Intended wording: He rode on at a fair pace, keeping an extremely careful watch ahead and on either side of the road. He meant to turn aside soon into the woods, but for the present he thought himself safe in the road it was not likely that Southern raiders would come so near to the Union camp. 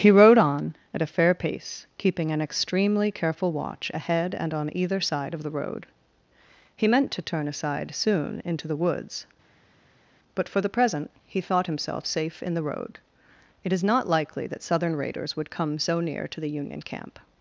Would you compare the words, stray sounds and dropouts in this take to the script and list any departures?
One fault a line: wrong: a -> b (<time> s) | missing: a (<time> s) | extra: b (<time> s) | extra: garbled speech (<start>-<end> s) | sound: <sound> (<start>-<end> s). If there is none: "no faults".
wrong: was -> is (13.7 s)